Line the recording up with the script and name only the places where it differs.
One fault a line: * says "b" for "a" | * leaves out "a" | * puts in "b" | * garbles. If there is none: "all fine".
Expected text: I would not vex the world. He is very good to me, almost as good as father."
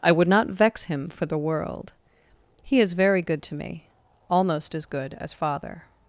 * puts in "him for"